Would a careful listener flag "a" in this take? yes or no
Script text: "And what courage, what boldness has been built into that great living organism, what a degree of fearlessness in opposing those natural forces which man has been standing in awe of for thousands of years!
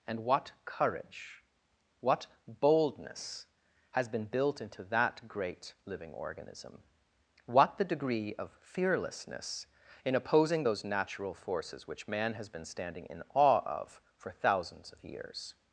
yes